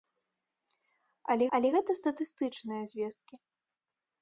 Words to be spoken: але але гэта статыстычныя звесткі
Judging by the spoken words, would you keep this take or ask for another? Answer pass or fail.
pass